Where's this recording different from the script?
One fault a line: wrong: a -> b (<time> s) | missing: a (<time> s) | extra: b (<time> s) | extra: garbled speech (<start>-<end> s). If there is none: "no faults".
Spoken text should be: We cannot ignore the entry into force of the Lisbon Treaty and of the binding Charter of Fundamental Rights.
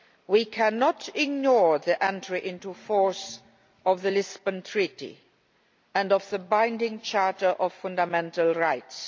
no faults